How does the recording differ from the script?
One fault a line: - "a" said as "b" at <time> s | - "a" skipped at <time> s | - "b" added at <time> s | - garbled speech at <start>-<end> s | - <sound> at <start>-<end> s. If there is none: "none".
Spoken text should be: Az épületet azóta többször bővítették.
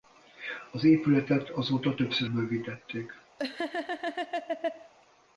- laugh at 3.4-4.9 s